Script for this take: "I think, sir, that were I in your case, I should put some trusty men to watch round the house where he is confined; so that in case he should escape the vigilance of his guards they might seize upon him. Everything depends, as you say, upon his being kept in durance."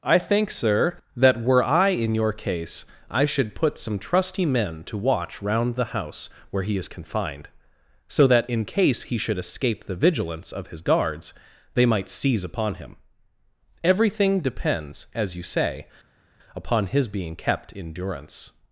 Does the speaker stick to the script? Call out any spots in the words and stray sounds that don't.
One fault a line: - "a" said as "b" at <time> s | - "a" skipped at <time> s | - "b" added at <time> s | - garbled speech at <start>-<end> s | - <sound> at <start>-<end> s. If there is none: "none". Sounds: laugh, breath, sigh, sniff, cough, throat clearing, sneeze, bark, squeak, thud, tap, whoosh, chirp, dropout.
none